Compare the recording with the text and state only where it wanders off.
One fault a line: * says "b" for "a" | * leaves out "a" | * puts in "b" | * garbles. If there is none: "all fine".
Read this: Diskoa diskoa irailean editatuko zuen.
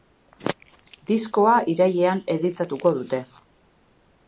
* leaves out "diskoa"
* says "dute" for "zuen"